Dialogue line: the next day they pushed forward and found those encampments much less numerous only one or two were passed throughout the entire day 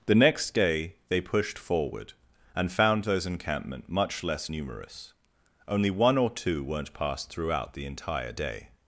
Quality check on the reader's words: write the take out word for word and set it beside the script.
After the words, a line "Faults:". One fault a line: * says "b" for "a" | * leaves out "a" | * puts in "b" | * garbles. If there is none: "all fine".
the next day they pushed forward and found those encampment much less numerous only one or two weren't passed throughout the entire day
Faults:
* says "encampment" for "encampments"
* says "weren't" for "were"